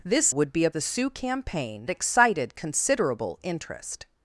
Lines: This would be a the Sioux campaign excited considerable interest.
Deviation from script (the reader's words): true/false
false